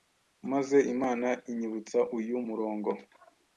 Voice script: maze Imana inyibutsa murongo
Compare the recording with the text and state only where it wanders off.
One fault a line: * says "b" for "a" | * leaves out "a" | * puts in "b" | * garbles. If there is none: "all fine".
* puts in "uyu"